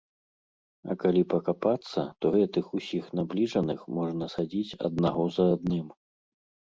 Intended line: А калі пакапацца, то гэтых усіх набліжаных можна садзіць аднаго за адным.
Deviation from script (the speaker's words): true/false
false